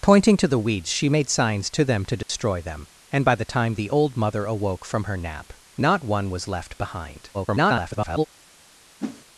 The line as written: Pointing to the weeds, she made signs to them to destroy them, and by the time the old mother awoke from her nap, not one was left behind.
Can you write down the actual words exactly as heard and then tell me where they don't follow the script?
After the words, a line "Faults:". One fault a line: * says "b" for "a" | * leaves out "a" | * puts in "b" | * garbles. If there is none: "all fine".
Pointing to the weeds, she made signs to them to destroy them, and by the time the old mother awoke from her nap, not one was left behind. [garbled]
Faults:
* garbles